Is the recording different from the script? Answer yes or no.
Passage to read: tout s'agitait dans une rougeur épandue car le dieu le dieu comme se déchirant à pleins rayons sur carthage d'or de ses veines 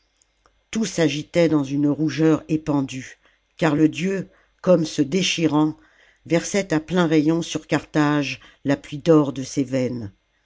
yes